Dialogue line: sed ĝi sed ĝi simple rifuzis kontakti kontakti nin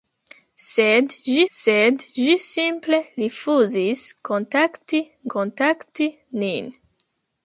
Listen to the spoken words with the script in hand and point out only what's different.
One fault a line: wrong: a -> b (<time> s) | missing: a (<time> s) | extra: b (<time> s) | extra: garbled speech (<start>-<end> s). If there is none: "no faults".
no faults